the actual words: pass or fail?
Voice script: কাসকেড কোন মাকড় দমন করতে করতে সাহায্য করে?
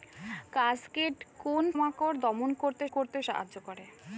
pass